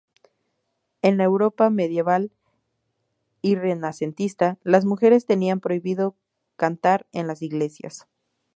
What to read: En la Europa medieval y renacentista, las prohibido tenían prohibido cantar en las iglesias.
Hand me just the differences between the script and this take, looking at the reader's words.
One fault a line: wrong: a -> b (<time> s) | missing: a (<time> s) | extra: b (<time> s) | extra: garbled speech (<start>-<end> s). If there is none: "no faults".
wrong: prohibido -> mujeres (4.8 s)